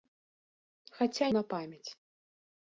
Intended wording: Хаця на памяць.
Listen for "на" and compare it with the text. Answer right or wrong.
right